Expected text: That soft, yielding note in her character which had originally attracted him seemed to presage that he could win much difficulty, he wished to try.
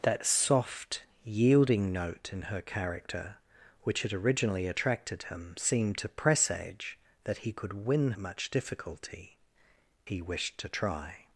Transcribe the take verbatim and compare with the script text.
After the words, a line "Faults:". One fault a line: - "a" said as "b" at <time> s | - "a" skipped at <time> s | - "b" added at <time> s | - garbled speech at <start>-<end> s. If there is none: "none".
That soft, yielding note in her character which had originally attracted him seemed to presage that he could win much difficulty, he wished to try.
Faults:
none